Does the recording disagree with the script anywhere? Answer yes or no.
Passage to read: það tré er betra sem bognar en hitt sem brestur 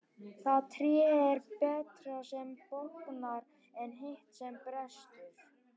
no